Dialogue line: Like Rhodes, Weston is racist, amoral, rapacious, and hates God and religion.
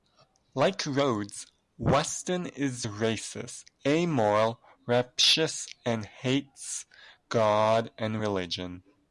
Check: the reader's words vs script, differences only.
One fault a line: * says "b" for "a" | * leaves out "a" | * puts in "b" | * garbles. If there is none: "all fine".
all fine